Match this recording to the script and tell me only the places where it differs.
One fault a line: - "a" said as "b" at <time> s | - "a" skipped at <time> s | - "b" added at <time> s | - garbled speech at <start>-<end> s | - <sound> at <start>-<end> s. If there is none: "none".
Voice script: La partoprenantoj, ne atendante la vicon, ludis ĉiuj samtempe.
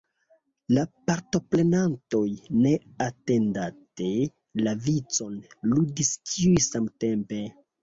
none